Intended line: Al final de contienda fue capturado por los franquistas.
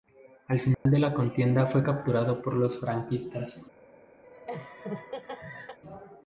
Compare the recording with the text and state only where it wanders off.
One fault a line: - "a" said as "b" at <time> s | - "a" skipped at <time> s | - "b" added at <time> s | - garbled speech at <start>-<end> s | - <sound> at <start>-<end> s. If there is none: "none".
- dropout at 0.7-0.9 s
- "la" added at 1.0 s
- laugh at 4.2-5.8 s